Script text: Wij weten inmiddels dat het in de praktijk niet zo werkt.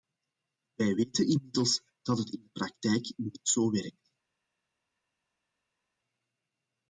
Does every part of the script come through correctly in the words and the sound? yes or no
yes